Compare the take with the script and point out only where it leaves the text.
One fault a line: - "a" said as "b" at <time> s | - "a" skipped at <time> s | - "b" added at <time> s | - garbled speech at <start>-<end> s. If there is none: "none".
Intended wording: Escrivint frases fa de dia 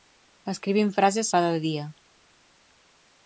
none